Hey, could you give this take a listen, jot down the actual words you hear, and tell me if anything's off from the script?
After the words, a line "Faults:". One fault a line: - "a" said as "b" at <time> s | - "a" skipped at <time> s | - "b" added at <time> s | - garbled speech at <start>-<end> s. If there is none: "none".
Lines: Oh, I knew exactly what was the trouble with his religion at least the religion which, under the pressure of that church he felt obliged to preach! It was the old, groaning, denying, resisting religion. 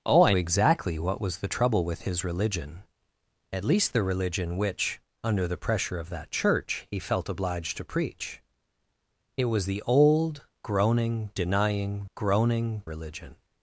Oh, I exactly what was the trouble with his religion at least the religion which, under the pressure of that church he felt obliged to preach! It was the old, groaning, denying, groaning religion.
Faults:
- "knew" skipped at 0.3 s
- "resisting" said as "groaning" at 12.2 s